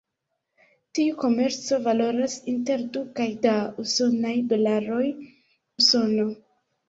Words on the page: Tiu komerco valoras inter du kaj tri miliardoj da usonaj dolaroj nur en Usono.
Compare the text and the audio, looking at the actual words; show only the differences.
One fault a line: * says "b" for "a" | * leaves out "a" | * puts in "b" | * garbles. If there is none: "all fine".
* leaves out "tri miliardoj"
* leaves out "nur en"